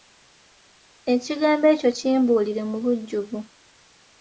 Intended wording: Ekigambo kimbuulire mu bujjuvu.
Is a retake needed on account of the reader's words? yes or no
yes